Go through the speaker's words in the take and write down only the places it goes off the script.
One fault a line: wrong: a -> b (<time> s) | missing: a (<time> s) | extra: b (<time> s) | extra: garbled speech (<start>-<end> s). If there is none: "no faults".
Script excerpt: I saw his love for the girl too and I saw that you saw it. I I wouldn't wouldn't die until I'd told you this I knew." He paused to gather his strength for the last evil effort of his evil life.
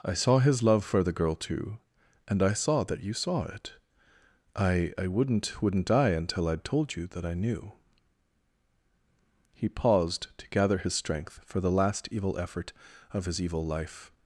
wrong: this -> that (7.1 s)